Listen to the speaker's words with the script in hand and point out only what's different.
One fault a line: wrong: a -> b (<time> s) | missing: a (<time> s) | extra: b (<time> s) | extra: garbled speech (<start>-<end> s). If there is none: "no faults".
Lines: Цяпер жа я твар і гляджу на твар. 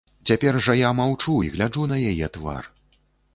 wrong: твар -> маўчу (1.0 s)
extra: яе (2.1 s)